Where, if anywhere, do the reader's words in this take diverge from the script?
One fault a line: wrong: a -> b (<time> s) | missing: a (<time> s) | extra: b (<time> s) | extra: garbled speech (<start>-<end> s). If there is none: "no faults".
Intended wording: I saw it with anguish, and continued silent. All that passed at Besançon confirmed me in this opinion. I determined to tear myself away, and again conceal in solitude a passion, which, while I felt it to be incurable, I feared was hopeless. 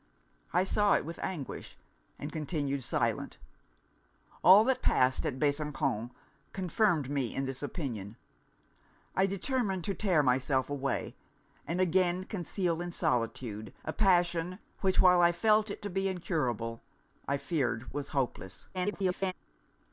extra: garbled speech (18.7-19.3 s)